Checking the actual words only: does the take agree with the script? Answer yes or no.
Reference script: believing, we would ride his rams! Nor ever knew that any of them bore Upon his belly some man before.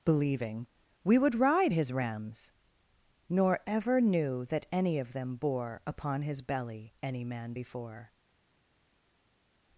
no